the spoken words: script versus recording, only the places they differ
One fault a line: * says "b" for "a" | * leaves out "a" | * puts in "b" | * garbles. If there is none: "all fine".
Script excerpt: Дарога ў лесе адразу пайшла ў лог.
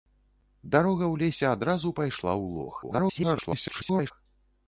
* garbles